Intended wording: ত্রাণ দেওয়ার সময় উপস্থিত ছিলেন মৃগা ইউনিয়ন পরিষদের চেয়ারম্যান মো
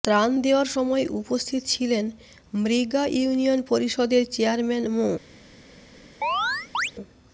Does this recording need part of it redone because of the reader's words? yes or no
no